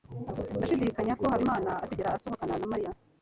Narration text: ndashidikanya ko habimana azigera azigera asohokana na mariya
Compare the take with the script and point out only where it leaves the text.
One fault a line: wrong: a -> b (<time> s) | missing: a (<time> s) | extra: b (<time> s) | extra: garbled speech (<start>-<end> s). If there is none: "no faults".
missing: azigera (2.1 s)